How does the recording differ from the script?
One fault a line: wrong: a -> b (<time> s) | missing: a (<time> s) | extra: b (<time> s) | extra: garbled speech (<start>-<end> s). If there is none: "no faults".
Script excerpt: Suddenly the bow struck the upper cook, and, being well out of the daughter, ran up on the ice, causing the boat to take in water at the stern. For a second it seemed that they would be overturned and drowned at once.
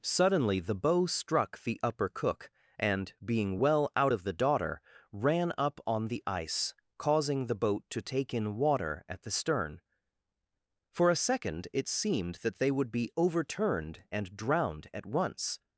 no faults